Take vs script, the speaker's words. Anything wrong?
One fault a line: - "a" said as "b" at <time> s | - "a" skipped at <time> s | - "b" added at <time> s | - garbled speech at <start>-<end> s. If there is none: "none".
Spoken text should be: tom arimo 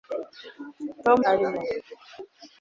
none